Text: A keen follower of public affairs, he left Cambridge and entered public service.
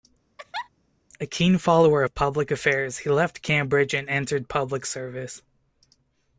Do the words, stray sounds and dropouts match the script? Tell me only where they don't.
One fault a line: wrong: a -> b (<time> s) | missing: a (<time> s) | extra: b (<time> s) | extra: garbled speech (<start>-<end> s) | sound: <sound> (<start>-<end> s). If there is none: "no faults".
sound: laugh (0.4-0.7 s)